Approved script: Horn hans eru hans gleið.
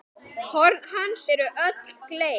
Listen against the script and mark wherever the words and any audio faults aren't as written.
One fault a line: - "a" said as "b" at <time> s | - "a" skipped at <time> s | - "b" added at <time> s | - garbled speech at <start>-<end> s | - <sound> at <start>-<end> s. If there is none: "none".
- "hans" said as "öll" at 1.7 s